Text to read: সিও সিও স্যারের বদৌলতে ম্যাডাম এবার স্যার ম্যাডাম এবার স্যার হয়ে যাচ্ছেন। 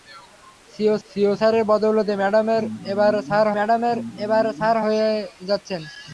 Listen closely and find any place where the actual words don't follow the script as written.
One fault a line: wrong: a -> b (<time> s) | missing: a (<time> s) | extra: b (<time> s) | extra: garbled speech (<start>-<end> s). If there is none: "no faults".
no faults